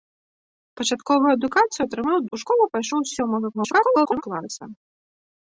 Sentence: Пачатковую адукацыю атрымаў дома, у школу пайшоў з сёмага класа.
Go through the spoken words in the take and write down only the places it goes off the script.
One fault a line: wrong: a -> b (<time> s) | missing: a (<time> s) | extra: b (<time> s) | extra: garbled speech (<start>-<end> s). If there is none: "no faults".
missing: дома (2.2 s)
extra: garbled speech (3.5-4.2 s)